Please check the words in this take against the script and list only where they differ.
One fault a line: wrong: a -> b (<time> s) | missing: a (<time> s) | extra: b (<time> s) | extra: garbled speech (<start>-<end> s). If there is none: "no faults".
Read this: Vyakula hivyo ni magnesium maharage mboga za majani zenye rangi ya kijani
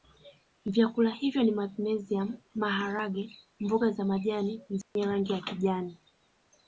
no faults